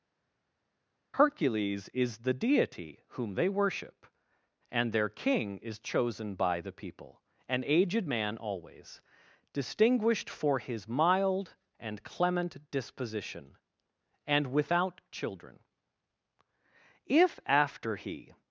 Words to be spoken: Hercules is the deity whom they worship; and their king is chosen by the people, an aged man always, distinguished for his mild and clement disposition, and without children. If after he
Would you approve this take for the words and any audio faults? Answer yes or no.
yes